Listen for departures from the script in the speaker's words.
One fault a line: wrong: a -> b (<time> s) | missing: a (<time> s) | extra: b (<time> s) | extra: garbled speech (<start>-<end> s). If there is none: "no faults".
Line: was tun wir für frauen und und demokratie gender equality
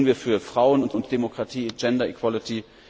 no faults